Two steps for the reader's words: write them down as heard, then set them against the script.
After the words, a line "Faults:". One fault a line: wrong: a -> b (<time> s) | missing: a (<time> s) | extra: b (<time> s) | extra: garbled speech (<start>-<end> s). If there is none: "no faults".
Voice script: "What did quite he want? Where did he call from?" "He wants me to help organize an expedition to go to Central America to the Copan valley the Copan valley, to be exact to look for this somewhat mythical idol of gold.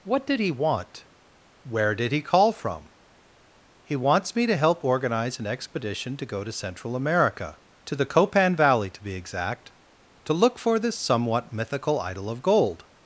"What did he want? Where did he call from?" "He wants me to help organize an expedition to go to Central America to the Copan valley, to be exact to look for this somewhat mythical idol of gold.
Faults:
missing: quite (0.4 s)
missing: the Copan valley (8.9 s)